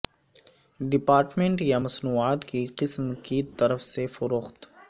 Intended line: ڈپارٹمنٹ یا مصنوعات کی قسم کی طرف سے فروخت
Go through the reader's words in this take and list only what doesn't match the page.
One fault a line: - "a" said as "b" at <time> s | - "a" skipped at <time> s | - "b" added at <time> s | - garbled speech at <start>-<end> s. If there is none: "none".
none